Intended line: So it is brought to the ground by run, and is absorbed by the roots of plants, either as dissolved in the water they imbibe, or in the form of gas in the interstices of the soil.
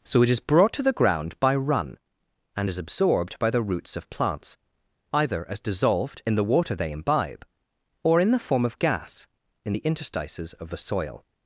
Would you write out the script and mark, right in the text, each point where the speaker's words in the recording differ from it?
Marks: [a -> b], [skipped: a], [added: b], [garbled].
So it is brought to the ground by run, and is absorbed by the roots of plants, either as dissolved in the water they imbibe, or in the form of gas in the interstices of the soil.